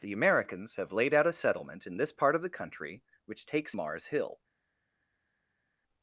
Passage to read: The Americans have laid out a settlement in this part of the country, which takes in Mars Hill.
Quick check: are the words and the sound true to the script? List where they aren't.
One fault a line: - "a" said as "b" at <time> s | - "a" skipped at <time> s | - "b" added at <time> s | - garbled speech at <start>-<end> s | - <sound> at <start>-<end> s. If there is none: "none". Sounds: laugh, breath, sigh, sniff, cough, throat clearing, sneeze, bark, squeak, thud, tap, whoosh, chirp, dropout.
- "in" skipped at 3.8 s